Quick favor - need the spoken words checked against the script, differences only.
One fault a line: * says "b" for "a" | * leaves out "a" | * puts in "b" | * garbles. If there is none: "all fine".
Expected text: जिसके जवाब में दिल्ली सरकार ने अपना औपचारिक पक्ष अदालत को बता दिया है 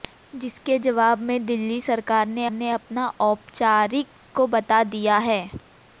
* puts in "ने"
* leaves out "पक्ष अदालत"